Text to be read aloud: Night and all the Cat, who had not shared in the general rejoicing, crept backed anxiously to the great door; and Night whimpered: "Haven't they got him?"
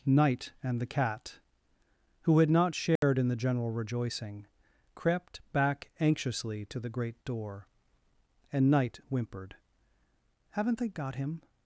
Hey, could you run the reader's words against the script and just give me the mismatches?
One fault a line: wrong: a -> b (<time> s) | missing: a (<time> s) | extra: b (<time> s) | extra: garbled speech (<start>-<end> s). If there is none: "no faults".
missing: all (0.8 s)
wrong: backed -> back (5.5 s)